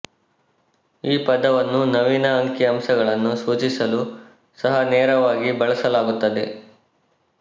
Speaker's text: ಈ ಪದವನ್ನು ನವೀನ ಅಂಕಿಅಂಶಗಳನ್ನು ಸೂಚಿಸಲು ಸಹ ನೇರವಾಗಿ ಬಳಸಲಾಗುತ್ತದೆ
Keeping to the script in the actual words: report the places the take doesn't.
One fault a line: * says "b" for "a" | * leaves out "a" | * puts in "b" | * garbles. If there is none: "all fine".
all fine